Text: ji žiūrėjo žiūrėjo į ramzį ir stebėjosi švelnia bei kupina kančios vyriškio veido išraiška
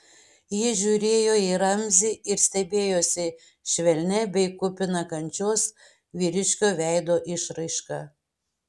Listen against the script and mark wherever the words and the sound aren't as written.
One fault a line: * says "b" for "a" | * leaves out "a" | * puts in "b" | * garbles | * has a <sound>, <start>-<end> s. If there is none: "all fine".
* leaves out "žiūrėjo"